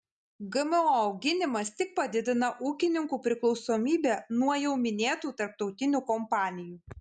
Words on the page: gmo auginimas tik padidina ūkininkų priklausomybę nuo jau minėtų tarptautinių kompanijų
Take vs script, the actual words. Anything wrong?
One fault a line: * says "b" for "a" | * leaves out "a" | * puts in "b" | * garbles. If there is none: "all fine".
all fine